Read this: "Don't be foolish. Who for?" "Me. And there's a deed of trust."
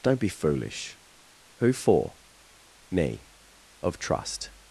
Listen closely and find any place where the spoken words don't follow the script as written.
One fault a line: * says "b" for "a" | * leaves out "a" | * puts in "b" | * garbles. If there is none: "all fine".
* leaves out "And there's a deed"